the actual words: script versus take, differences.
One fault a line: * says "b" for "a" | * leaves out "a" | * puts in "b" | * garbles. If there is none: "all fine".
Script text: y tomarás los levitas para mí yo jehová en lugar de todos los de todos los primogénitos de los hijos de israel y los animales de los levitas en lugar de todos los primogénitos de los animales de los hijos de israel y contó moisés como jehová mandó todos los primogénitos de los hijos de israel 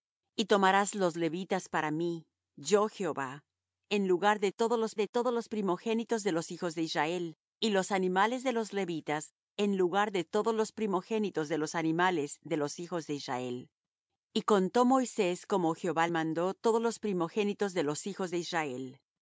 all fine